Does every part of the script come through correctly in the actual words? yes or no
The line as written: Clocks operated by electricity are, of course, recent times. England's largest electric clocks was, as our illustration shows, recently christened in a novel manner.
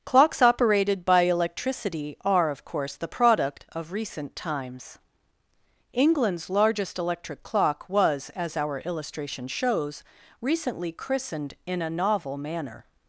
no